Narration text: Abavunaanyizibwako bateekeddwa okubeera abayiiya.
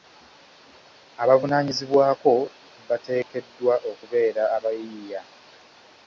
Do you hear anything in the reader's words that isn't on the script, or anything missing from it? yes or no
no